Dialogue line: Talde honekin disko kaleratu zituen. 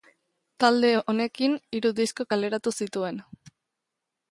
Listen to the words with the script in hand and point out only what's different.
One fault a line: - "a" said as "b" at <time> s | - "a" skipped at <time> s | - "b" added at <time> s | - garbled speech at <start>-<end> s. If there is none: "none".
- "hiru" added at 1.8 s